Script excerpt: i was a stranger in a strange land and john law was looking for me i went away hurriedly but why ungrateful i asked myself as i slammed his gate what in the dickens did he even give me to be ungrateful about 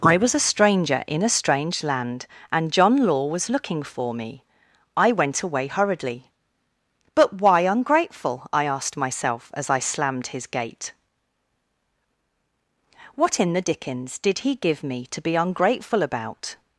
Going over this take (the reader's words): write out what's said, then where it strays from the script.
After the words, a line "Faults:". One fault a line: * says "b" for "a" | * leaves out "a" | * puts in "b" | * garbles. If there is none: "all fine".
i was a stranger in a strange land and john law was looking for me i went away hurriedly but why ungrateful i asked myself as i slammed his gate what in the dickens did he give me to be ungrateful about
Faults:
* leaves out "even"